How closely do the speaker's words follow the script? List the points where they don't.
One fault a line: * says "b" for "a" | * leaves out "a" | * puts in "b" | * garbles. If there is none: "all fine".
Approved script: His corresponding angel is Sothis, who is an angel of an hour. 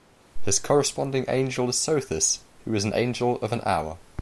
all fine